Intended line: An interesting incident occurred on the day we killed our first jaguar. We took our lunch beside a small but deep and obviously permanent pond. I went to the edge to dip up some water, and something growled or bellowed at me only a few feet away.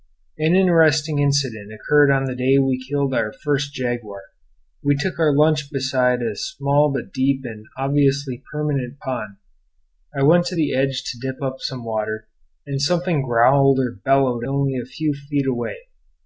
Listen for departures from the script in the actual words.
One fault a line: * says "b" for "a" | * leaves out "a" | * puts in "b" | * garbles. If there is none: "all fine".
* leaves out "at me"